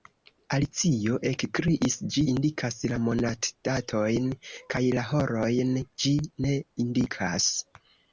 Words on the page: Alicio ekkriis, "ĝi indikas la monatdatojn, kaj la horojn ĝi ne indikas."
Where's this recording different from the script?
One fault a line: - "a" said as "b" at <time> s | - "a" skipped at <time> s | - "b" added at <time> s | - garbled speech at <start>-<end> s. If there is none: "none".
none